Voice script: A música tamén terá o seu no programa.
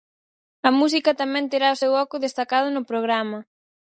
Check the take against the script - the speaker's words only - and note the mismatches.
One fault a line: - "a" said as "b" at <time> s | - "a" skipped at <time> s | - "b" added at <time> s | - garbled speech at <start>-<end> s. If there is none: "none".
- "oco destacado" added at 2.0 s